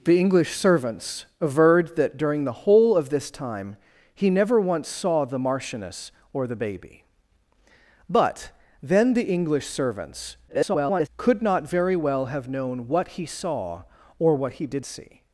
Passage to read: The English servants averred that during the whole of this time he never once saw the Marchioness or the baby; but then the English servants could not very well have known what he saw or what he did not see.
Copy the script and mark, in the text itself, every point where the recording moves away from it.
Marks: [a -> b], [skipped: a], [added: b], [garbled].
The English servants averred that during the whole of this time he never once saw the Marchioness or the baby; but then the English servants [garbled] could not very well have known what he saw or what he did [skipped: not] see.